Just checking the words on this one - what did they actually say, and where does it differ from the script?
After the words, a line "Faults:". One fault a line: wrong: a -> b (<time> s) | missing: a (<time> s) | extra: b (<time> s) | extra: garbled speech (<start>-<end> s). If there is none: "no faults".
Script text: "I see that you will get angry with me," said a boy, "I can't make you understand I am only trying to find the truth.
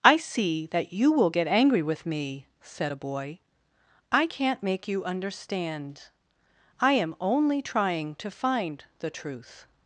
"I see that you will get angry with me," said a boy, "I can't make you understand I am only trying to find the truth.
Faults:
no faults